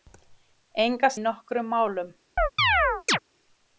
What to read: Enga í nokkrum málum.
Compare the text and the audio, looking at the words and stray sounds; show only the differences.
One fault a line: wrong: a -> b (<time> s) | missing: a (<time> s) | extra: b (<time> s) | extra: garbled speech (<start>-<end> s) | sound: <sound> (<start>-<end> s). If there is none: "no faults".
sound: chirp (2.4-3.2 s)